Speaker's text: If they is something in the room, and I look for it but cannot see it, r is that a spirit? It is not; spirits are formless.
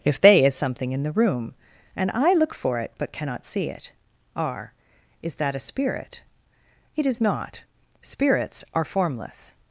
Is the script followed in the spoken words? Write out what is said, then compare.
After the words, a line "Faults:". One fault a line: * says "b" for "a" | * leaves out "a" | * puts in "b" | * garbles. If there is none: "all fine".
If they is something in the room, and I look for it but cannot see it, r is that a spirit? It is not; spirits are formless.
Faults:
all fine